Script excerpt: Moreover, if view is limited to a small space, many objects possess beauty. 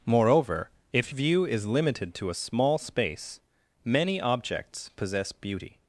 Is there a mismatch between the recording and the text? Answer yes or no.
no